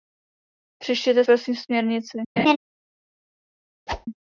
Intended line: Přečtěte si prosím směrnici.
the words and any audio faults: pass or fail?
fail